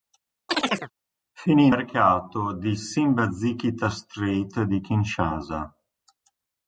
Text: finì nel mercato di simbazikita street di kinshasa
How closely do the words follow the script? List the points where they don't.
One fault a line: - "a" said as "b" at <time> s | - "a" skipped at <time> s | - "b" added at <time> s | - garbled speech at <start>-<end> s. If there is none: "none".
- "nel" skipped at 1.7 s